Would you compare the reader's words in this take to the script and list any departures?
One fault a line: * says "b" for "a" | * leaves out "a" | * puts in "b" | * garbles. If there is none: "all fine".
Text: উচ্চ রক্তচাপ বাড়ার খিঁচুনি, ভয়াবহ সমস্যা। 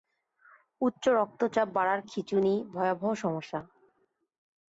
all fine